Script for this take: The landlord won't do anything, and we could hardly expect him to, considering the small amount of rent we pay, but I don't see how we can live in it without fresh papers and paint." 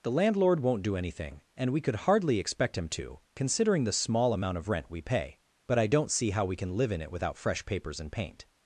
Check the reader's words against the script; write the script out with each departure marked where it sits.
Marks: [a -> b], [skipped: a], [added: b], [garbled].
The landlord won't do anything, and we could hardly expect him to, considering the small amount of rent we pay, but I don't see how we can live in it without fresh papers and paint."